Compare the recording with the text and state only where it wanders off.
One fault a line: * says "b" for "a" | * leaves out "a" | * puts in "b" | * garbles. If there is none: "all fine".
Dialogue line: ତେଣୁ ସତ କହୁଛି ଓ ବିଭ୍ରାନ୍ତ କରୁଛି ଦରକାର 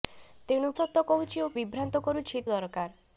all fine